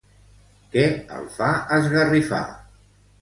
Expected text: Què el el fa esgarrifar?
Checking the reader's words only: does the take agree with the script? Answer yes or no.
no